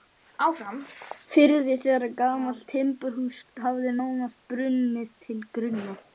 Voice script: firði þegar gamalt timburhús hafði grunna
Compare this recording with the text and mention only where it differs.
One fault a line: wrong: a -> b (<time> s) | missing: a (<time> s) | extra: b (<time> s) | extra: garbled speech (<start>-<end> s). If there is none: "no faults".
extra: nánast brunnið til (4.0 s)